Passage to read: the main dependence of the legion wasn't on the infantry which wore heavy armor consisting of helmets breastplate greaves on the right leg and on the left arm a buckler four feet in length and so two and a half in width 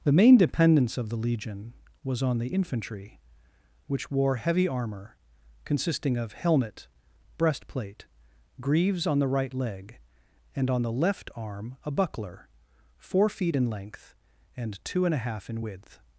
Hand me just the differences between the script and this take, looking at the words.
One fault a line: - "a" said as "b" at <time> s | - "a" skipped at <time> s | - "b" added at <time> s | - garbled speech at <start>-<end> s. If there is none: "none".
- "wasn't" said as "was" at 2.0 s
- "helmets" said as "helmet" at 6.3 s
- "so" skipped at 14.8 s